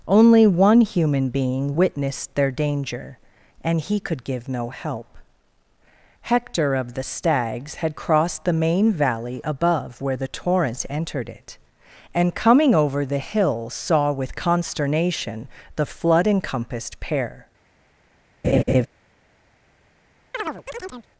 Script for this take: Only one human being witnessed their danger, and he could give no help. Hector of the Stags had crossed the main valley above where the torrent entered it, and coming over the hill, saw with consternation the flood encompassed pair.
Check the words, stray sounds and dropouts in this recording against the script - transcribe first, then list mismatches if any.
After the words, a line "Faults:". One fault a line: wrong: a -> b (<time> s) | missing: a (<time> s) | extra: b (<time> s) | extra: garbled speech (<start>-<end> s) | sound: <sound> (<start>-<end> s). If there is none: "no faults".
Only one human being witnessed their danger, and he could give no help. Hector of the Stags had crossed the main valley above where the torrent entered it, and coming over the hill, saw with consternation the flood encompassed pair.
Faults:
sound: laugh (18.4-18.9 s)
sound: chirp (20.3-21.1 s)